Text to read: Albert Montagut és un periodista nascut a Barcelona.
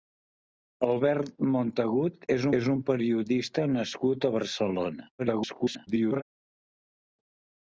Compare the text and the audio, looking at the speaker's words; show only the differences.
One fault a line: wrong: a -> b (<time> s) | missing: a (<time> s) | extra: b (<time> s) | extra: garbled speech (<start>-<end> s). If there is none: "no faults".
extra: és (2.6 s)
extra: garbled speech (5.2-6.2 s)